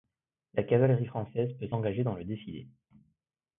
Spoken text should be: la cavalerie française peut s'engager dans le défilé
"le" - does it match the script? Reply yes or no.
yes